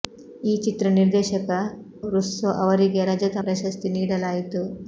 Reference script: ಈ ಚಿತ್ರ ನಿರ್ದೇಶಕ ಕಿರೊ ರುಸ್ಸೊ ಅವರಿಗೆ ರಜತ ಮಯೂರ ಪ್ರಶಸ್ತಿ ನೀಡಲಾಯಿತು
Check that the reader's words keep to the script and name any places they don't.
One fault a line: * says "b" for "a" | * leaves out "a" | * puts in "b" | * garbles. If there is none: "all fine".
* leaves out "ಕಿರೊ"
* leaves out "ಮಯೂರ"